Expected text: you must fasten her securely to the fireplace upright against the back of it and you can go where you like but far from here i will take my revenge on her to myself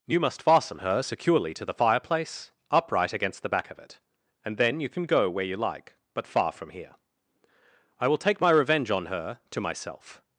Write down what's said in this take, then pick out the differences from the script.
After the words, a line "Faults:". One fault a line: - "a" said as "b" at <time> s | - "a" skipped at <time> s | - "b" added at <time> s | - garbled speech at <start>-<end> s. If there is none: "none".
you must fasten her securely to the fireplace upright against the back of it and then you can go where you like but far from here i will take my revenge on her to myself
Faults:
- "then" added at 4.6 s